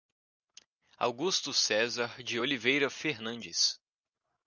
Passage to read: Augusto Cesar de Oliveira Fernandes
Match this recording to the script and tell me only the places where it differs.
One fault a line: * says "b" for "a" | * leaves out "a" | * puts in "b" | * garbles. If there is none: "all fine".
all fine